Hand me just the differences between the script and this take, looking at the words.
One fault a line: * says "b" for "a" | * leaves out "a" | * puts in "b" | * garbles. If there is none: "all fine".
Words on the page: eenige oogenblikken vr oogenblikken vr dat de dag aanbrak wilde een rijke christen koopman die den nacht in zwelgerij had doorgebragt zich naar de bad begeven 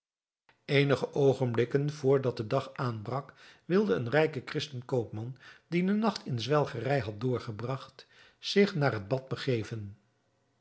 * leaves out "oogenblikken vr"
* says "het" for "de"